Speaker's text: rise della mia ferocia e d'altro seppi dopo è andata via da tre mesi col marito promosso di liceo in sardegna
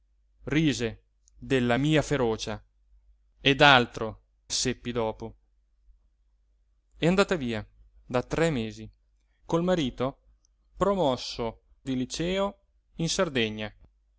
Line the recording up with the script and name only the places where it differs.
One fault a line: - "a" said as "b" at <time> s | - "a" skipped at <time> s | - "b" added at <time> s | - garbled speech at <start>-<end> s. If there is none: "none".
none